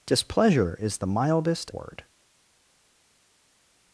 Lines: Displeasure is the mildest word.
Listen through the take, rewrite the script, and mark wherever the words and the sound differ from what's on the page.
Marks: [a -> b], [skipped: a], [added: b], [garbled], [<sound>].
Displeasure is the mildest word.